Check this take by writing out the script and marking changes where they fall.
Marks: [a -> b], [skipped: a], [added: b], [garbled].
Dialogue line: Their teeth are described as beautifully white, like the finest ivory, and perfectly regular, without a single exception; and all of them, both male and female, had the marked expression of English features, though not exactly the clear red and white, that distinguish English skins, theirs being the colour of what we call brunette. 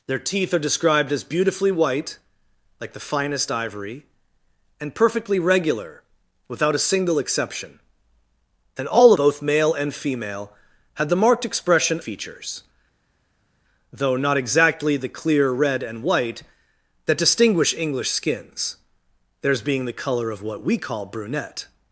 Their teeth are described as beautifully white, like the finest ivory, and perfectly regular, without a single exception; and all [skipped: of them,] both male and female, had the marked expression [skipped: of English] features, though not exactly the clear red and white, that distinguish English skins, theirs being the colour of what we call brunette.